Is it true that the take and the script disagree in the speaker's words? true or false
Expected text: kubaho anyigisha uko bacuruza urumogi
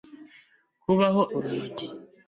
true